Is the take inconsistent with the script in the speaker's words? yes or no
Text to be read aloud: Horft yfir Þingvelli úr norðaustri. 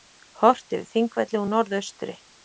no